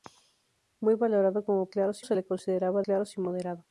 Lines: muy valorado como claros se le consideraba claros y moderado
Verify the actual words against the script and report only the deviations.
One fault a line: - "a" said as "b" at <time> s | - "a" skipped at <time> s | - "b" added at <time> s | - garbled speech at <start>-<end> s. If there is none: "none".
none